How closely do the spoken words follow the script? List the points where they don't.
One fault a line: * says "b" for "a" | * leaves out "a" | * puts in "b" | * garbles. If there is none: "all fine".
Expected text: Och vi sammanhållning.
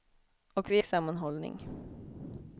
all fine